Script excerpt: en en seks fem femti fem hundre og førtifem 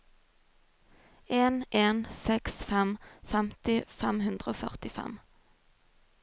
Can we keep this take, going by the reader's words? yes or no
yes